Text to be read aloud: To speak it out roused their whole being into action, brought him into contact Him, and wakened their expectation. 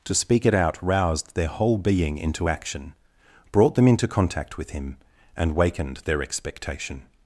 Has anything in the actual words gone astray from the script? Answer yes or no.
yes